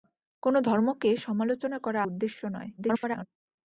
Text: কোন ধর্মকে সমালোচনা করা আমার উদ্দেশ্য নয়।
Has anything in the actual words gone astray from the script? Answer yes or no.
yes